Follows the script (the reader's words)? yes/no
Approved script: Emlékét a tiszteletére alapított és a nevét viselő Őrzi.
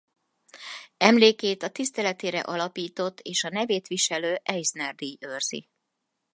no